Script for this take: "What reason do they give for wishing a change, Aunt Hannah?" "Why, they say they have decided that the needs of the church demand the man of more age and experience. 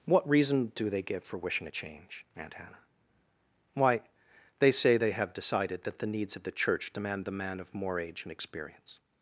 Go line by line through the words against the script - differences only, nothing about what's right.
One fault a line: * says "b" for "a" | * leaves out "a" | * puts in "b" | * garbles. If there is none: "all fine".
all fine